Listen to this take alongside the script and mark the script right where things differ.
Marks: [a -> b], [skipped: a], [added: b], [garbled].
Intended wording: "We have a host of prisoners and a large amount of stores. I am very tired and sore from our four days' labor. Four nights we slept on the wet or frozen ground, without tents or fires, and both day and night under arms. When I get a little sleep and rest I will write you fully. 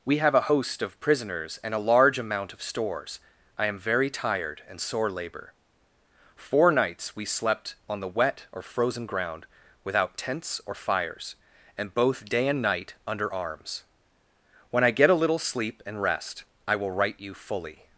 "We have a host of prisoners and a large amount of stores. I am very tired and sore [skipped: from our four days'] labor. Four nights we slept on the wet or frozen ground, without tents or fires, and both day and night under arms. When I get a little sleep and rest I will write you fully.